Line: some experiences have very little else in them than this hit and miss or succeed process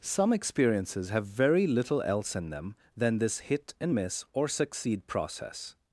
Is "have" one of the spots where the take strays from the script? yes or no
no